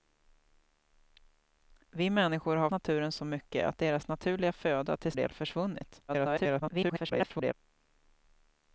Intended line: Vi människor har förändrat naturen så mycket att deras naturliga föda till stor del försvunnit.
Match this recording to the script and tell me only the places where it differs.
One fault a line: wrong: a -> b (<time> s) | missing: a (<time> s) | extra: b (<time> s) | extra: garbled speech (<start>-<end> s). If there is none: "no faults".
missing: förändrat (2.7 s)
missing: stor (5.1 s)
extra: garbled speech (6.1-7.5 s)